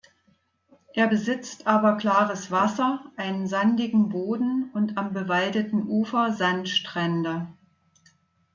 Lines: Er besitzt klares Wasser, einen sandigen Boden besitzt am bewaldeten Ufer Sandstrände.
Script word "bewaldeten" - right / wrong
right